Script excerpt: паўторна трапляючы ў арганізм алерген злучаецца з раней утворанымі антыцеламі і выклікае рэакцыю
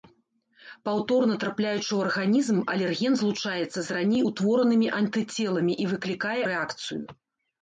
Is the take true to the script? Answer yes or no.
yes